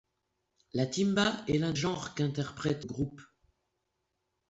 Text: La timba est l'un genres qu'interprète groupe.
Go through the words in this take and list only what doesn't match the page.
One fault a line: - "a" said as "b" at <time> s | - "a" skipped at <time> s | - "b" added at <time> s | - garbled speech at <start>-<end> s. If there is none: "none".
none